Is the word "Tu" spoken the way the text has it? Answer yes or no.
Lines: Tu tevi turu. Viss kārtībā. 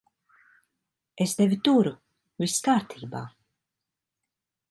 no